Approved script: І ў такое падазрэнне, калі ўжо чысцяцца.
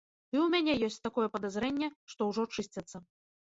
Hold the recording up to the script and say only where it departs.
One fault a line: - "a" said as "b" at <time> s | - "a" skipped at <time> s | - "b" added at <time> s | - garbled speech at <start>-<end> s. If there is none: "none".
- "мяне ёсць" added at 0.5 s
- "калі" said as "што" at 2.2 s